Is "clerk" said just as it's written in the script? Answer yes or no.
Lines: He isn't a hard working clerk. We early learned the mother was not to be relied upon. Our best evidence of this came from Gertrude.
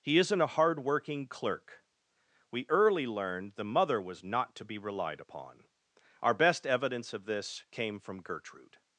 yes